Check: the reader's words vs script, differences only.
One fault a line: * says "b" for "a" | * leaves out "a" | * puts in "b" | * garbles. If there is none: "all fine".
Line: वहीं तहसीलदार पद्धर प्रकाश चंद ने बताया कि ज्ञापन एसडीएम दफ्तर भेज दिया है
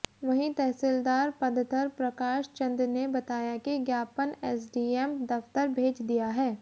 all fine